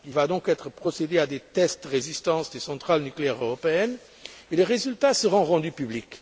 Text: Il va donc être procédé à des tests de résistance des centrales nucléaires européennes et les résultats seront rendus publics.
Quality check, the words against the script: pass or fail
pass